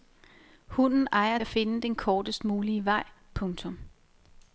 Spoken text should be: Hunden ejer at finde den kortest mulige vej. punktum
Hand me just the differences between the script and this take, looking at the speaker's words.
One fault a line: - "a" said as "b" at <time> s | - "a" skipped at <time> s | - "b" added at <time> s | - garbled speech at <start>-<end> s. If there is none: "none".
none